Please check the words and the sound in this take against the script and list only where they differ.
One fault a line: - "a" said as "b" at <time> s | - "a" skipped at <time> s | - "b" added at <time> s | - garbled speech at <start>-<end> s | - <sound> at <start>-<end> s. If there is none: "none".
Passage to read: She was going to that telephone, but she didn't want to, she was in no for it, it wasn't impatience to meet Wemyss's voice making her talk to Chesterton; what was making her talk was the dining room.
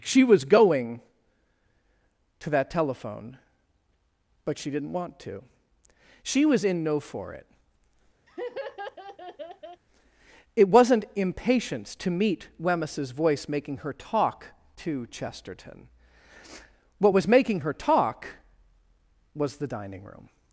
- laugh at 8.3-9.8 s